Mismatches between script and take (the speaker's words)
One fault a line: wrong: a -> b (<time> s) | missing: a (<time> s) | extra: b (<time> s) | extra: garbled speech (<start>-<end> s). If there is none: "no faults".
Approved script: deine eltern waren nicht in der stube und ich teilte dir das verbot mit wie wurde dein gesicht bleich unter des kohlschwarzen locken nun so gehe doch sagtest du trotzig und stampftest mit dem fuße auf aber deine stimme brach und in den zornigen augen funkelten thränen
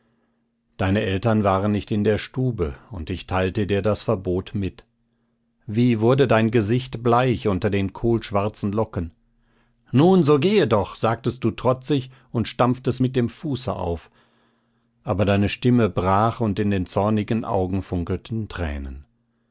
wrong: des -> den (7.7 s)